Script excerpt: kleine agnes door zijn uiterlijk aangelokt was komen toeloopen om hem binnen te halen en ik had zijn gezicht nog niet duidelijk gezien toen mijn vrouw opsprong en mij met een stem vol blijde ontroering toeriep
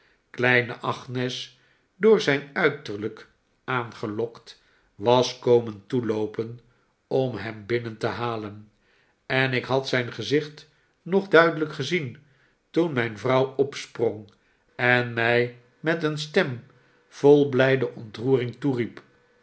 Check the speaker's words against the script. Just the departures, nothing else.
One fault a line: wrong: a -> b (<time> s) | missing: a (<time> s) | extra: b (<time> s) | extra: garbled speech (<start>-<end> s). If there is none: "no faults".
missing: niet (11.3 s)